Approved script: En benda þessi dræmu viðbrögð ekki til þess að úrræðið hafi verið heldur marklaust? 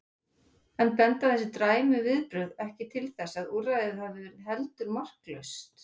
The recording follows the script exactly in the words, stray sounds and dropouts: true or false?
true